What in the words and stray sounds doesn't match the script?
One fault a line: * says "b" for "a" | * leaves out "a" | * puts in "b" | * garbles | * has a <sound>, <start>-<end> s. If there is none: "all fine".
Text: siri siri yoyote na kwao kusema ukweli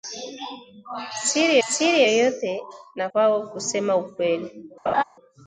* has a laugh, 4.9-5.0 s